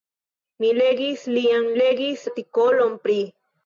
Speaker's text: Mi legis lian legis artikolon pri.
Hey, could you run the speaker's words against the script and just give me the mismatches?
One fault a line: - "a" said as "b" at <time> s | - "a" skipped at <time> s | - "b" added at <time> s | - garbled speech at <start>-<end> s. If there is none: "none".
none